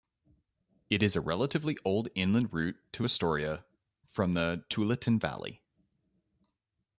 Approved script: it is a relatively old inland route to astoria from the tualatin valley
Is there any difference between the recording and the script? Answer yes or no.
no